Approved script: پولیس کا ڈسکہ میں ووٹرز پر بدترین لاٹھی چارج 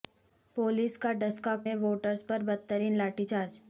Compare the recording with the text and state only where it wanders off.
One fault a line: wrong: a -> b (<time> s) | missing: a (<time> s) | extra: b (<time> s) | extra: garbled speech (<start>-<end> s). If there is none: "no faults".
no faults